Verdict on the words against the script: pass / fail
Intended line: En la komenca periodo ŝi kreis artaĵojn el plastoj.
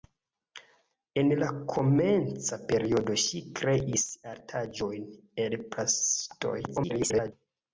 fail